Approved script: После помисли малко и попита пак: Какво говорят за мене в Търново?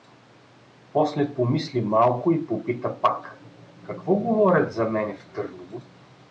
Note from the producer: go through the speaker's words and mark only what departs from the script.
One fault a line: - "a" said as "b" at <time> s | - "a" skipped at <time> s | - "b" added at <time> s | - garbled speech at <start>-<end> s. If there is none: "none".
none